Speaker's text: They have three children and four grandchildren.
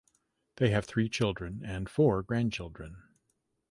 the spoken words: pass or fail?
pass